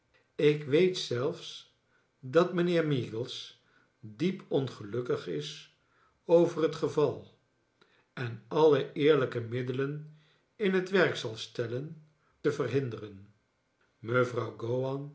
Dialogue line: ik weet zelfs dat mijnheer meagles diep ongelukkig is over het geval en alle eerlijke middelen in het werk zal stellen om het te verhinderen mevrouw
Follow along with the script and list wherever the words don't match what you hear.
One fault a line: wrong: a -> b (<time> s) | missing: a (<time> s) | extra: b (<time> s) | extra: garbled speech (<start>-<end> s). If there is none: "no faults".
missing: om het (12.0 s)